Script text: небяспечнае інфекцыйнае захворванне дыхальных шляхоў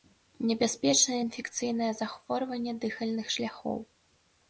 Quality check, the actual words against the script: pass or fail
pass